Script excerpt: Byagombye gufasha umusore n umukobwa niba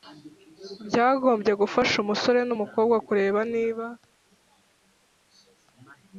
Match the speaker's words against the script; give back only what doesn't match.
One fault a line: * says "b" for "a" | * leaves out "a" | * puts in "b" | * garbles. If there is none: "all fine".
* puts in "kureba"